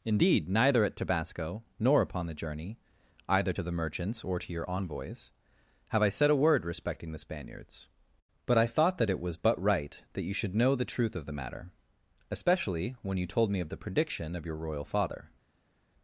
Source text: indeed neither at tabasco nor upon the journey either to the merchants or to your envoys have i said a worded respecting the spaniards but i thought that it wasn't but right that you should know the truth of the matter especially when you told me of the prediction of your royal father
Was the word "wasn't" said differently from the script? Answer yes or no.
yes